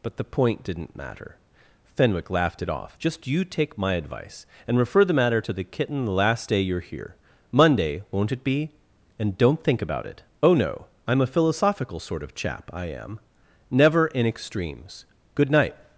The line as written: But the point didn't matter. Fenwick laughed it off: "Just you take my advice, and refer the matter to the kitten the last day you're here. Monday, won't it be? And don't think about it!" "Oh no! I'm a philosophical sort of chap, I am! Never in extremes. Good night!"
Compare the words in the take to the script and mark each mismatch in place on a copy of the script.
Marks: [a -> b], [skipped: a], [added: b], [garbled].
But the point didn't matter. Fenwick laughed it off: "Just you take my advice, and refer the matter to the kitten the last day you're here. Monday, won't it be? And don't think about it!" "Oh no! I'm a philosophical sort of chap, I am! Never in extremes. Good night!"